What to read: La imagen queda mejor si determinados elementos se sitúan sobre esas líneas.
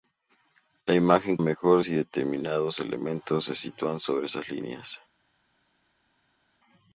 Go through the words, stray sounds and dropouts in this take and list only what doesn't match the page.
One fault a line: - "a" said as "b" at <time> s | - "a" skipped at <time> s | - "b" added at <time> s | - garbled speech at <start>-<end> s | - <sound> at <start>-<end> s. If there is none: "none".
- "queda" skipped at 1.4 s